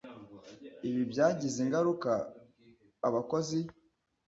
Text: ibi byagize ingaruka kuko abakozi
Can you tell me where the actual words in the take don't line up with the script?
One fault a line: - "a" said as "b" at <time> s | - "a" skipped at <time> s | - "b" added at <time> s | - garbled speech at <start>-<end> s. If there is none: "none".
- "kuko" skipped at 2.1 s